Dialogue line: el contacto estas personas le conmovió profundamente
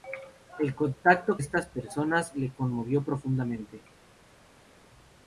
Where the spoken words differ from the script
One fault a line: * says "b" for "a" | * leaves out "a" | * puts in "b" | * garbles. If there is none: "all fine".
all fine